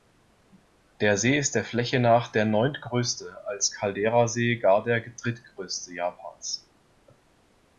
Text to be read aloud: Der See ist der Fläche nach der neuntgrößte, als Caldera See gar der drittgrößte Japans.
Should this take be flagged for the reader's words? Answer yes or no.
no